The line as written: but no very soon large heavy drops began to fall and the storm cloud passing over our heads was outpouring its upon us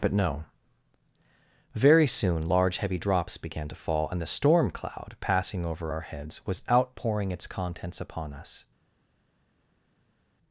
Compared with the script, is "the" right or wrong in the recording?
right